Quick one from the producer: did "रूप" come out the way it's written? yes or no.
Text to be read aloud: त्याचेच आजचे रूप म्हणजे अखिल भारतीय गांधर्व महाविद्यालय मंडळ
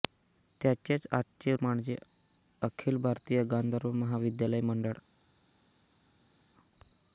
no